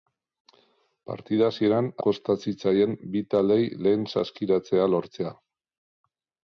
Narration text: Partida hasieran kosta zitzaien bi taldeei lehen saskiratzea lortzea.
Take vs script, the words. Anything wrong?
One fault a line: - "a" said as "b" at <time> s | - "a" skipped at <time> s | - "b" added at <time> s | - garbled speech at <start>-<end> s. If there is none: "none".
none